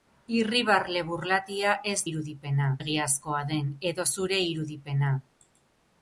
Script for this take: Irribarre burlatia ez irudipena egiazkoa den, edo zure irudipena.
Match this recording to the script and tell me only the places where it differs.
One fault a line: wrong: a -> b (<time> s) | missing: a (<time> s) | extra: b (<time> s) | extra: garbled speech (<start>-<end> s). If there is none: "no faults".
no faults